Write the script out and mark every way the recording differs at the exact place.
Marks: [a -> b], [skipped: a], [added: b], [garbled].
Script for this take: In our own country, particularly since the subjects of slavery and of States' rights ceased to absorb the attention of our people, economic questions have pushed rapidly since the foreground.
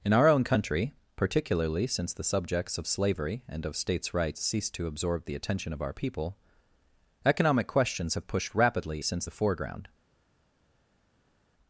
In our own country, particularly since the subjects of slavery and of States' rights ceased to absorb the attention of our people, economic questions have pushed rapidly since the foreground.